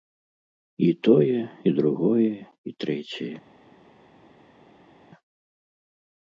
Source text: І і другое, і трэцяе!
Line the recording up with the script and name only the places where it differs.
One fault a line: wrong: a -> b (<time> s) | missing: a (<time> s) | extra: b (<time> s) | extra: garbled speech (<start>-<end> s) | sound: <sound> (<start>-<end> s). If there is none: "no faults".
extra: тое (1.1 s)